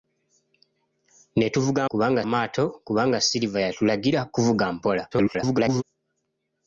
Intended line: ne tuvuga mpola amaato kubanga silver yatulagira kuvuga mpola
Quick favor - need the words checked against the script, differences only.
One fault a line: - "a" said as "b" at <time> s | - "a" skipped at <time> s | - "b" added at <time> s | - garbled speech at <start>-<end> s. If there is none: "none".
- "mpola" said as "kubanga" at 1.9 s
- garbled speech at 5.1-5.8 s